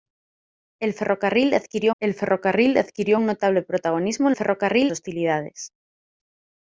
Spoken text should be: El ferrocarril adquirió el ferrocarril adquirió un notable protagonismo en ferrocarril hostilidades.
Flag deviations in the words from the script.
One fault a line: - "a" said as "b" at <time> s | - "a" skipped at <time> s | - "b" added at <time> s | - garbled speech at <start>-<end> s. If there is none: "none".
none